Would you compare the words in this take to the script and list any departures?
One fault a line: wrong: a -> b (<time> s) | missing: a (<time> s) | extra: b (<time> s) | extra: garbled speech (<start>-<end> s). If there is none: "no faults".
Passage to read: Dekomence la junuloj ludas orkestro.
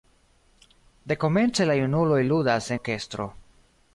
no faults